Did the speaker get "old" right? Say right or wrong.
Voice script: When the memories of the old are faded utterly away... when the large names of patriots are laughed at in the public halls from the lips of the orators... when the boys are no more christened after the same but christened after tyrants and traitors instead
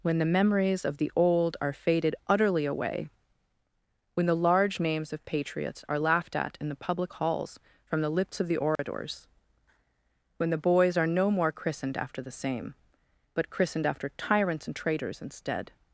right